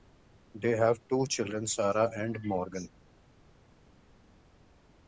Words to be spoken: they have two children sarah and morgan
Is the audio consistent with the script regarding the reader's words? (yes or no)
yes